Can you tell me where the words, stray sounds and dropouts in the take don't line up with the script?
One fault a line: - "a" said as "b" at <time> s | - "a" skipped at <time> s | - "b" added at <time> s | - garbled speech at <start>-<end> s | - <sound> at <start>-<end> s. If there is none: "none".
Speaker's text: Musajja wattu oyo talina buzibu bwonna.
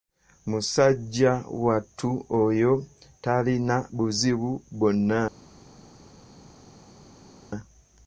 none